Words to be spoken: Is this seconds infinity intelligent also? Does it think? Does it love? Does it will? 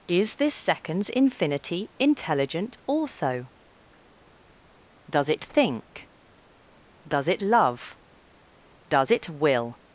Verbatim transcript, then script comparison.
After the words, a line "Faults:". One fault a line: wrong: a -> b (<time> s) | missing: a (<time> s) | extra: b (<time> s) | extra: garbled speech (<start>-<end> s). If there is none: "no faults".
Is this seconds infinity intelligent also? Does it think? Does it love? Does it will?
Faults:
no faults